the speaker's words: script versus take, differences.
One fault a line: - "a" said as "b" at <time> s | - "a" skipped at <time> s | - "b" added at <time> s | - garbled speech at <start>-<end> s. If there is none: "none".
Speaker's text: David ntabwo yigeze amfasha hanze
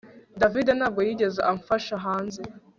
none